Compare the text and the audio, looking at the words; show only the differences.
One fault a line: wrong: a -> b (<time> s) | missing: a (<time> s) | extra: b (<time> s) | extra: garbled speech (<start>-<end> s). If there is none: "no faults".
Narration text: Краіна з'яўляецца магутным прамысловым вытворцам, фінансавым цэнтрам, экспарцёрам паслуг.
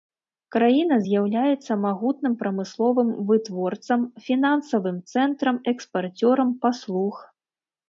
no faults